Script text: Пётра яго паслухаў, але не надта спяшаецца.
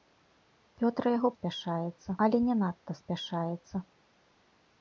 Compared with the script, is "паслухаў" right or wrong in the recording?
wrong